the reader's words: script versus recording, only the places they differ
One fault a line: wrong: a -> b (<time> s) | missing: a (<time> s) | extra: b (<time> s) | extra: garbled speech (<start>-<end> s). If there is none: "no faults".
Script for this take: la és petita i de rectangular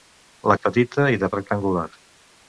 no faults